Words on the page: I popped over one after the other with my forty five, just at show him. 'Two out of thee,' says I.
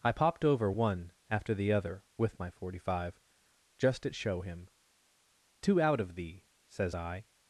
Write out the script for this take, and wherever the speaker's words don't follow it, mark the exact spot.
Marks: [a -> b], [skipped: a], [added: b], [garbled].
I popped over one after the other with my forty five, just at show him. 'Two out of thee,' says I.